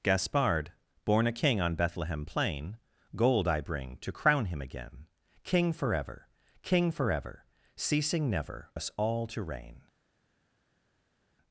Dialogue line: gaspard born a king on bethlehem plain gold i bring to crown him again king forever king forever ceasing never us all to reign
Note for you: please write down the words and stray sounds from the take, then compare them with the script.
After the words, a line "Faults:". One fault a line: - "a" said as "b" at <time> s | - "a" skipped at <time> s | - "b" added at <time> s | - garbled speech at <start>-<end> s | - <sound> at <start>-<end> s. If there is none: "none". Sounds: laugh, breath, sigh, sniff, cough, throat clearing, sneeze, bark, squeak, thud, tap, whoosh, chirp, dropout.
gaspard born a king on bethlehem plain gold i bring to crown him again king forever king forever ceasing never us all to reign
Faults:
none